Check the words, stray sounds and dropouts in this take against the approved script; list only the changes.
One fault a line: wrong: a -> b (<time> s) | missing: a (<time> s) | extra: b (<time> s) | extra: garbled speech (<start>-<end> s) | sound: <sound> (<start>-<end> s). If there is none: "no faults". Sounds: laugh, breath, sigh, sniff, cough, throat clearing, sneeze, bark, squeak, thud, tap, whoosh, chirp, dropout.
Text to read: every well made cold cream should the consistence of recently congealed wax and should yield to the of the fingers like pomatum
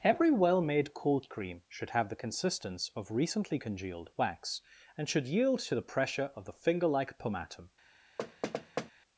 extra: have (1.9 s)
extra: pressure (5.8 s)
wrong: fingers -> finger (6.5 s)
sound: thud (8.2-8.9 s)